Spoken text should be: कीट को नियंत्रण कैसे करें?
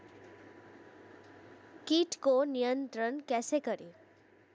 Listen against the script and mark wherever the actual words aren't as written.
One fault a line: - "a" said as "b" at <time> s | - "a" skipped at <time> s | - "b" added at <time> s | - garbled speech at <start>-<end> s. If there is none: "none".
none